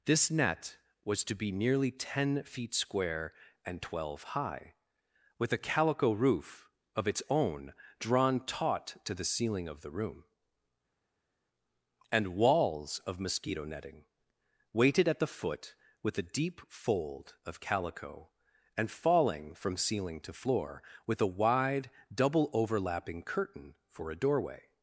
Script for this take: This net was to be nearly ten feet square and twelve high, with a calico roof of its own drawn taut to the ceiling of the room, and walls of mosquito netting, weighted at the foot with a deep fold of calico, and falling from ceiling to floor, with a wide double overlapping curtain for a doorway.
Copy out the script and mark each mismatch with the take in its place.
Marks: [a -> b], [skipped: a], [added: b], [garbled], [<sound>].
This net was to be nearly ten feet square and twelve high, with a calico roof of its own drawn taut to the ceiling of the room, and walls of mosquito netting, weighted at the foot with a deep fold of calico, and falling from ceiling to floor, with a wide double overlapping curtain for a doorway.